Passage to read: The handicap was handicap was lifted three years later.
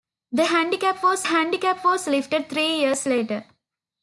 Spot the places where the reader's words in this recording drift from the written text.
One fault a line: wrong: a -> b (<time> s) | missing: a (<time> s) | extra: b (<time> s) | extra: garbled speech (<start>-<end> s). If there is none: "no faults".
no faults